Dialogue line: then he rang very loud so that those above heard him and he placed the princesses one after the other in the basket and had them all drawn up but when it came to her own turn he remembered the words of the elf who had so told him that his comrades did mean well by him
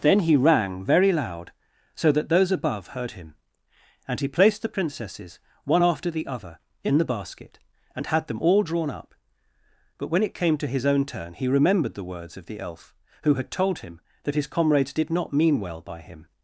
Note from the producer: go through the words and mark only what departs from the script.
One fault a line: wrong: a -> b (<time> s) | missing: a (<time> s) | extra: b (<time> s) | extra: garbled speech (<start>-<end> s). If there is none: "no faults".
wrong: her -> his (10.7 s)
missing: so (13.5 s)
extra: not (15.1 s)